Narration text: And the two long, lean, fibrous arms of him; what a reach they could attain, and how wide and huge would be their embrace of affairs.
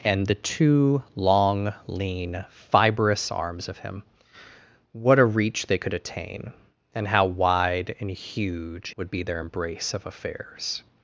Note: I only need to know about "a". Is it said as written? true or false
true